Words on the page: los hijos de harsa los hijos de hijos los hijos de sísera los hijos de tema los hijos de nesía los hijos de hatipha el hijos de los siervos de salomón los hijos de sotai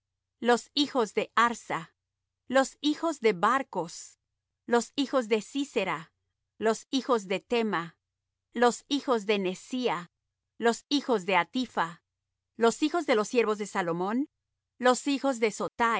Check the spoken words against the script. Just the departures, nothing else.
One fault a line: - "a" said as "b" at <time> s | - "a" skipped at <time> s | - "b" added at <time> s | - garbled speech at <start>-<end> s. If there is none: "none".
- "hijos" said as "barcos" at 3.3 s
- "el" said as "los" at 12.6 s